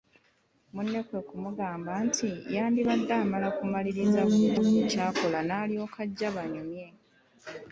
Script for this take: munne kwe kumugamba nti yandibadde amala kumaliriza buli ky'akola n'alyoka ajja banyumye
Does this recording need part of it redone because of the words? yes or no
yes